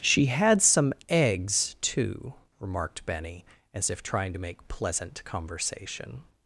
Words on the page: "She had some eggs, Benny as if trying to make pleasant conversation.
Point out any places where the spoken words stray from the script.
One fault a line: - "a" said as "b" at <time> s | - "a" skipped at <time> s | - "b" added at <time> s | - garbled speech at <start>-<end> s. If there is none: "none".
- "too remarked" added at 1.8 s